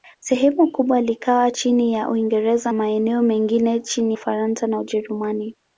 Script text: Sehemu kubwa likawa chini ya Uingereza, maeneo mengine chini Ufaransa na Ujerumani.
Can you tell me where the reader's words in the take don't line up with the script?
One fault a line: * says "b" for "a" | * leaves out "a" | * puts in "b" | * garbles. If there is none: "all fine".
all fine